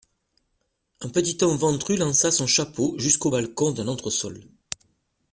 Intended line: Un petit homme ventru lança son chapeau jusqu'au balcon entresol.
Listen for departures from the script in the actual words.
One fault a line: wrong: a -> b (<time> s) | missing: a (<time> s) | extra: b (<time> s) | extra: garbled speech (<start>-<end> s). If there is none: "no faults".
extra: d'un (3.7 s)